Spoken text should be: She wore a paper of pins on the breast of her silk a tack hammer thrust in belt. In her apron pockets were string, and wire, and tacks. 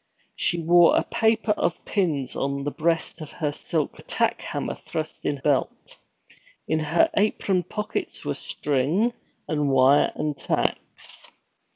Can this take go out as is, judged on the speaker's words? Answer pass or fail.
pass